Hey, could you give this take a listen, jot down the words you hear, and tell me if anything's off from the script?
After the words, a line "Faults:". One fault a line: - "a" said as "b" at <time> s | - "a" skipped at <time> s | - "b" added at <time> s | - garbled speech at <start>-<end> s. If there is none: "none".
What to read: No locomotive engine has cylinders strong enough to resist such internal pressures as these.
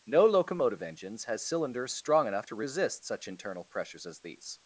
No locomotive engines has cylinders strong enough to resist such internal pressures as these.
Faults:
- "engine" said as "engines" at 0.8 s